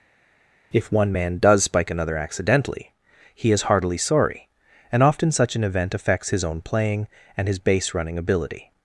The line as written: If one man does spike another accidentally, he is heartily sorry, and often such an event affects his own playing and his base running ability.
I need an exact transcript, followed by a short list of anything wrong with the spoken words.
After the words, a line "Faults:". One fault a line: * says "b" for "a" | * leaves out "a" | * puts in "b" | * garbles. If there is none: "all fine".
If one man does spike another accidentally, he is heartily sorry, and often such an event affects his own playing and his base running ability.
Faults:
all fine